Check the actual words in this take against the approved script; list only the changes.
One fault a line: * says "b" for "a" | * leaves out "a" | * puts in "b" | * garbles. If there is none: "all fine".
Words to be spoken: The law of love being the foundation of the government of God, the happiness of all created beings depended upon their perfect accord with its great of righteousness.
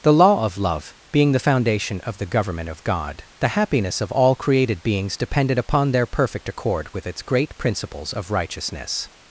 * puts in "principles"